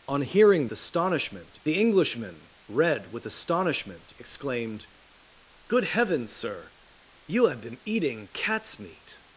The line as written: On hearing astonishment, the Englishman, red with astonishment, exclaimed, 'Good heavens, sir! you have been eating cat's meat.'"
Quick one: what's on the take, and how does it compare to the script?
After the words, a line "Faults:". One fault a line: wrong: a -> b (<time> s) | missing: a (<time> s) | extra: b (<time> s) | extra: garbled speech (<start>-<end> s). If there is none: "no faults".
On hearing astonishment, the Englishman, red with astonishment, exclaimed, 'Good heavens, sir! you have been eating cat's meat.'"
Faults:
no faults